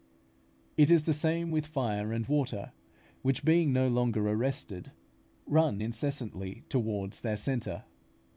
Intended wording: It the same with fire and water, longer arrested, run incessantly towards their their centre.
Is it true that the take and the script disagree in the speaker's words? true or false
true